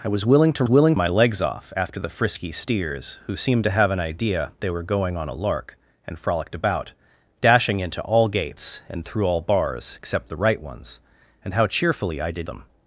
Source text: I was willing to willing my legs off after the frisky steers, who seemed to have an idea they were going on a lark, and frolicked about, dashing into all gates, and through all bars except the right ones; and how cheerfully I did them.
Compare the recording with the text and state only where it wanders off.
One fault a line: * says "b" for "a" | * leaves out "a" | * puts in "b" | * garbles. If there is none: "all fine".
all fine